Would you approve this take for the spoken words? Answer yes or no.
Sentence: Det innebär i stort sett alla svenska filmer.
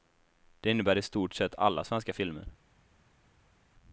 yes